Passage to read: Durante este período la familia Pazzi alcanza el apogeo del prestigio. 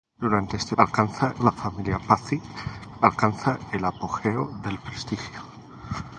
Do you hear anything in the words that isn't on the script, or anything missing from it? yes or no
yes